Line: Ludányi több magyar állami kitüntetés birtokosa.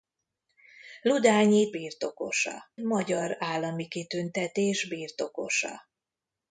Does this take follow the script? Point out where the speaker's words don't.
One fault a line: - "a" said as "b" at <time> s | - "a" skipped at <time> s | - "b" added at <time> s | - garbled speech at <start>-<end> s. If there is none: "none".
- "több" said as "birtokosa" at 1.7 s